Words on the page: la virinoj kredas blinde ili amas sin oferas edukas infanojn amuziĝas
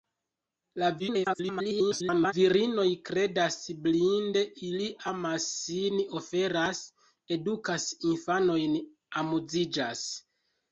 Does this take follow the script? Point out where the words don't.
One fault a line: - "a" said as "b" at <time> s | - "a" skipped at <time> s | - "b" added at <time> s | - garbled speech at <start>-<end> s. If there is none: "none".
- garbled speech at 1.0-2.3 s